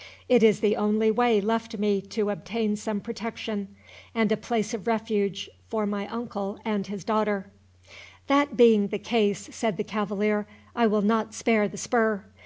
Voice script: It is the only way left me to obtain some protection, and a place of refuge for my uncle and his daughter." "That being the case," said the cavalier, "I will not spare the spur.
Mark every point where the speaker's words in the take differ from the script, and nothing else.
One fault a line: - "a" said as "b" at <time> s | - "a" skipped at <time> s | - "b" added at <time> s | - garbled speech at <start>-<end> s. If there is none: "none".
none